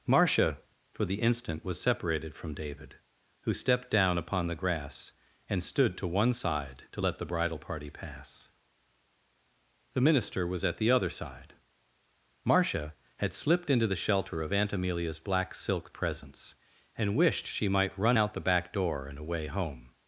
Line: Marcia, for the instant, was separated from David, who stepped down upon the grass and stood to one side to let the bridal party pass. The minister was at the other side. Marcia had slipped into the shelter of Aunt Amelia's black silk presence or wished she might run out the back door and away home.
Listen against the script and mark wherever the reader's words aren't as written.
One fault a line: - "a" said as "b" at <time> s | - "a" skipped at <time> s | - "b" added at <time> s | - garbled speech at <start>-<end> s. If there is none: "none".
- "or" said as "and" at 17.0 s